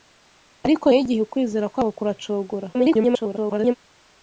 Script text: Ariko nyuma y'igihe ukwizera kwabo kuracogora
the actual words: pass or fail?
fail